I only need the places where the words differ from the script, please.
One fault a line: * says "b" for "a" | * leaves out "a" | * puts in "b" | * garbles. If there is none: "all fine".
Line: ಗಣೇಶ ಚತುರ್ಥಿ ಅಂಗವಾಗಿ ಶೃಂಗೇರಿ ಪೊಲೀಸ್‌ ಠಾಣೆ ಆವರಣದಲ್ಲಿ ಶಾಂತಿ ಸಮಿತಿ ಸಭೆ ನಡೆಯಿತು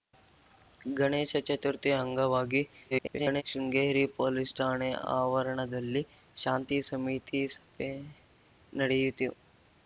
* garbles